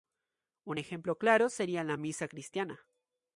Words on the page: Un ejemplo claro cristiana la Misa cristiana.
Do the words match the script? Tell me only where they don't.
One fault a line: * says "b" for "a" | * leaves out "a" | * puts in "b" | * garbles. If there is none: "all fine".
* says "sería" for "cristiana"